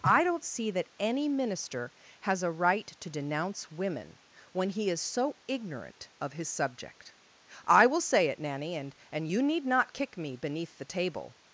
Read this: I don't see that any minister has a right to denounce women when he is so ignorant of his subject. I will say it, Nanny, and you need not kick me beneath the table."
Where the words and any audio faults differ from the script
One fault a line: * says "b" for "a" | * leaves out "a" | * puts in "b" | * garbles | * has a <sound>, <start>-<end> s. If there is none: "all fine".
* puts in "and"